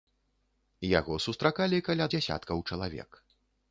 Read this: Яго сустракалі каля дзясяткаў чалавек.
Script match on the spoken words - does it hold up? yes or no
yes